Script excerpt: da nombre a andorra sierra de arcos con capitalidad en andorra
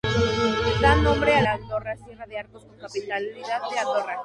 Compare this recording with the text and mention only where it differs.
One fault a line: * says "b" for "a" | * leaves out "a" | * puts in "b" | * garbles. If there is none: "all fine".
all fine